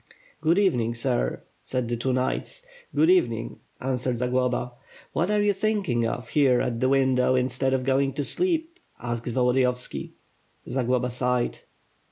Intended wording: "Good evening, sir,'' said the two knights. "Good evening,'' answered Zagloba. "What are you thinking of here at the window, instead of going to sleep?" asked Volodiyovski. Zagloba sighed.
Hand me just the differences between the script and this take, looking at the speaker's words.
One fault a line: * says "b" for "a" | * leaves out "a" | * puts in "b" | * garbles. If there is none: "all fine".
all fine